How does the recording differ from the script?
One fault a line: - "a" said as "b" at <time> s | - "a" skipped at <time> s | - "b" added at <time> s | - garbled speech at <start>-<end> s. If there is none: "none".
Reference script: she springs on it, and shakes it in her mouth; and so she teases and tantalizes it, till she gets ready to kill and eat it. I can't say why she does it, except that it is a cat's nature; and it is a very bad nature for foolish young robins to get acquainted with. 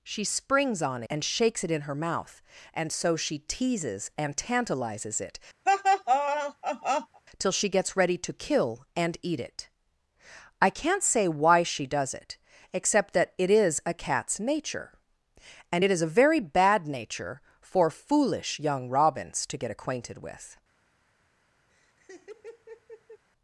- "it" skipped at 1.0 s